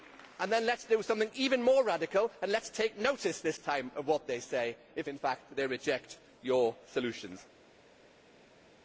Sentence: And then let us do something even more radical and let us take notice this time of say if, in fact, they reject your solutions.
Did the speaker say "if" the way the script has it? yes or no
yes